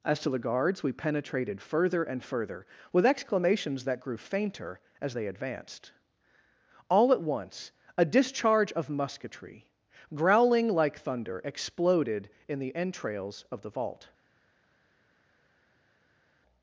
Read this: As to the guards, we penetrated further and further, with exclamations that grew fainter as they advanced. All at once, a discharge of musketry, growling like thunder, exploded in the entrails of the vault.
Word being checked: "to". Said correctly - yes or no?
yes